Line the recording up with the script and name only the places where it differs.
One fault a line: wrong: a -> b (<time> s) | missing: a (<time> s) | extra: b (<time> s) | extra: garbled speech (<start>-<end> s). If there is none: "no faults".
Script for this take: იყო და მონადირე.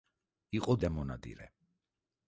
no faults